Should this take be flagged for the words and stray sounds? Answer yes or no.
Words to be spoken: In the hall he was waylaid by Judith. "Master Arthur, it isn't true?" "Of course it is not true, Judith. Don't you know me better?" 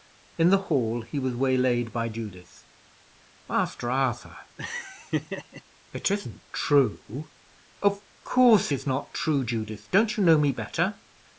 yes